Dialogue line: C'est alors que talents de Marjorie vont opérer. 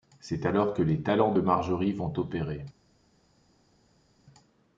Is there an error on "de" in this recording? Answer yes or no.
no